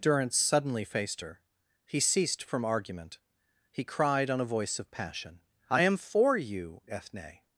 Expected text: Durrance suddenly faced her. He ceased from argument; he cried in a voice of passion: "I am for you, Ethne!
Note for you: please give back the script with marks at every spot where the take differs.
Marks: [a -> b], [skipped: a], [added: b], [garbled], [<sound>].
Durrance suddenly faced her. He ceased from argument; he cried [in -> on] a voice of passion: "I am for you, Ethne!